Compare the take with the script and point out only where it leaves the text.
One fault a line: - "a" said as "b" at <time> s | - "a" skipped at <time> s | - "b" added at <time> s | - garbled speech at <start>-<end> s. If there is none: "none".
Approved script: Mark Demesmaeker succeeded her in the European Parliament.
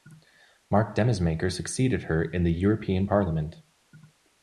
none